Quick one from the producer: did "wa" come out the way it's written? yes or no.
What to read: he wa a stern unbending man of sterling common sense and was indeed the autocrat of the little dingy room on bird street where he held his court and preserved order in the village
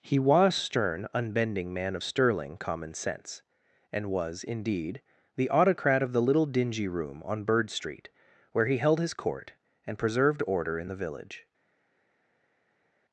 no